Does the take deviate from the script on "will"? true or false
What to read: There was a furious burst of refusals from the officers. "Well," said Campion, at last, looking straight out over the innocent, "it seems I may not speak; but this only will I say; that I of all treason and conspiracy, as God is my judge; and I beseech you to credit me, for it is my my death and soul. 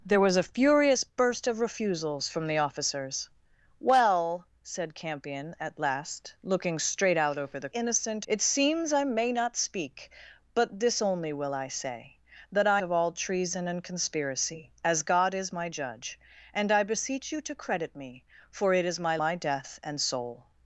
false